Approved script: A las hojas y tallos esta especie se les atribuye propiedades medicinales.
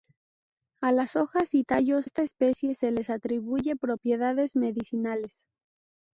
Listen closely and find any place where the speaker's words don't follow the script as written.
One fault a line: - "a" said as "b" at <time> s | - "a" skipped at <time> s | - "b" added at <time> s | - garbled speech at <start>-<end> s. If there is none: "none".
none